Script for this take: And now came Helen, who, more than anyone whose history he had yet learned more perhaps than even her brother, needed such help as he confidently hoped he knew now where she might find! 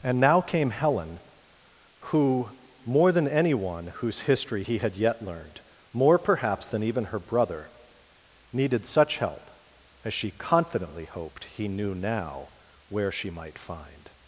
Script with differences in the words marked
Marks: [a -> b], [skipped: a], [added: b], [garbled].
And now came Helen, who, more than anyone whose history he had yet learned more perhaps than even her brother, needed such help as [he -> she] confidently hoped he knew now where she might find!